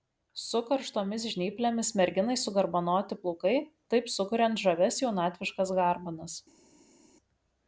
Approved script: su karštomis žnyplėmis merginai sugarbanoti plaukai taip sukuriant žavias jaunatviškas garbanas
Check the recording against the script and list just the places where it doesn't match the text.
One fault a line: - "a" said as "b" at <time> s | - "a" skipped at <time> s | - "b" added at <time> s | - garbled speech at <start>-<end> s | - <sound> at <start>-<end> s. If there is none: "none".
none